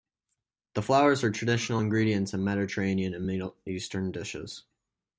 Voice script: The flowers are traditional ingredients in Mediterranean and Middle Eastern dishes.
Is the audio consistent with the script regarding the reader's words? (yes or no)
yes